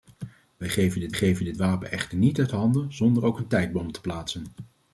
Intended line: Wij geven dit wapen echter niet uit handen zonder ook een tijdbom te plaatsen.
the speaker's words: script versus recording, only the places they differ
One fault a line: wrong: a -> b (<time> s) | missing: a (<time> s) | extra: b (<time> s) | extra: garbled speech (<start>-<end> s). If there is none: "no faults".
extra: geven dit (1.1 s)